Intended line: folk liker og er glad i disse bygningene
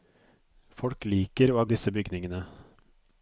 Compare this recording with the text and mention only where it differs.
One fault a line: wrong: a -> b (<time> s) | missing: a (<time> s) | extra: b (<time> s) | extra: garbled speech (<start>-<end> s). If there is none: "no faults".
missing: glad (1.7 s)